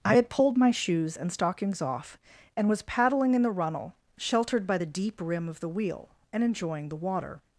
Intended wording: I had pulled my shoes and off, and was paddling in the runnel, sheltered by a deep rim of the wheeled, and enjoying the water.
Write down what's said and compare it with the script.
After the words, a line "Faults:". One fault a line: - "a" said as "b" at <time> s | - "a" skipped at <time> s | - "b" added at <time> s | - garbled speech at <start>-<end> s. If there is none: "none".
I had pulled my shoes and stockings off, and was paddling in the runnel, sheltered by the deep rim of the wheel, and enjoying the water.
Faults:
- "stockings" added at 1.3 s
- "a" said as "the" at 4.7 s
- "wheeled" said as "wheel" at 5.7 s